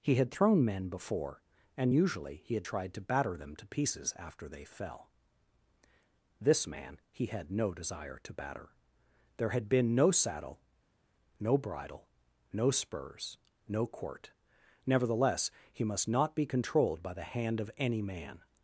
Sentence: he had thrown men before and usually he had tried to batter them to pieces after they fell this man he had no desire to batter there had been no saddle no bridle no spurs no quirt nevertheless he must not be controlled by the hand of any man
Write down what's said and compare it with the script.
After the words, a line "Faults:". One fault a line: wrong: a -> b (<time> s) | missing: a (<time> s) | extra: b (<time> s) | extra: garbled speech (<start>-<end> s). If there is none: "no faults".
he had thrown men before and usually he had tried to batter them to pieces after they fell this man he had no desire to batter there had been no saddle no bridle no spurs no quirt nevertheless he must not be controlled by the hand of any man
Faults:
no faults